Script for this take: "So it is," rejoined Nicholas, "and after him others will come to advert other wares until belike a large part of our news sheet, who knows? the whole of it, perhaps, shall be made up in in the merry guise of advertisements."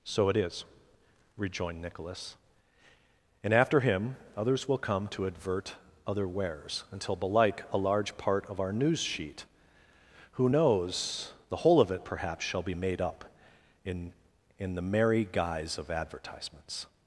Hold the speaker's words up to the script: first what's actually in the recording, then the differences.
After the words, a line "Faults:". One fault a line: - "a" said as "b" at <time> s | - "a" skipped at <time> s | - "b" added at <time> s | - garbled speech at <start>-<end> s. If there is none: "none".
"So it is," rejoined Nicholas, "and after him others will come to advert other wares until belike a large part of our news sheet, who knows? the whole of it, perhaps, shall be made up in in the merry guise of advertisements."
Faults:
none